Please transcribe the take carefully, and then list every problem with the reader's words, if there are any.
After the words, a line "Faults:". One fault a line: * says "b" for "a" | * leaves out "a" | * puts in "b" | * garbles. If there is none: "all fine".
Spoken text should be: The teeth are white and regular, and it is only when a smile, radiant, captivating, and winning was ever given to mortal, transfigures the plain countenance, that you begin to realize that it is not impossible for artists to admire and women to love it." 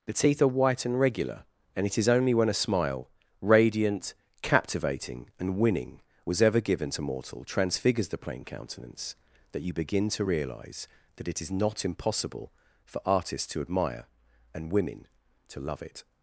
The teeth are white and regular, and it is only when a smile, radiant, captivating, and winning was ever given to mortal, transfigures the plain countenance, that you begin to realize that it is not impossible for artists to admire and women to love it."
Faults:
all fine